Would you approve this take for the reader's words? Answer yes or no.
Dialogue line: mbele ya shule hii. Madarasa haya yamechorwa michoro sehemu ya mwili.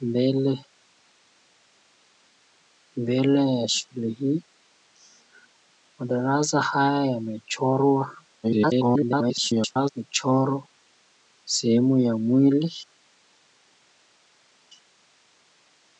no